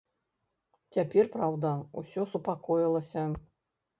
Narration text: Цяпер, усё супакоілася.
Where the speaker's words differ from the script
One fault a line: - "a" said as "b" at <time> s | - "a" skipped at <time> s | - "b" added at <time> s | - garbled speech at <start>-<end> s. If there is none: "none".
- "праўда" added at 1.3 s